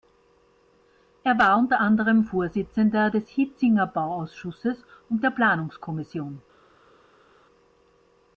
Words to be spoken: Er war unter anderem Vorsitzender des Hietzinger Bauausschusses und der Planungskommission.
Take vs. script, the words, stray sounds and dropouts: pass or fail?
pass